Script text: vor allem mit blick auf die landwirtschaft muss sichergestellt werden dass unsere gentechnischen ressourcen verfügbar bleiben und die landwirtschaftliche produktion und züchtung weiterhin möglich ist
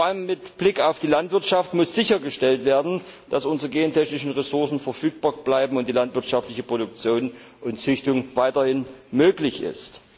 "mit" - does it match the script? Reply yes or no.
yes